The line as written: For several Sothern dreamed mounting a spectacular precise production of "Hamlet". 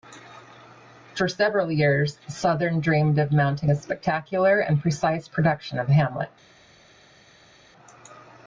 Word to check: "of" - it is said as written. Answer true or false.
true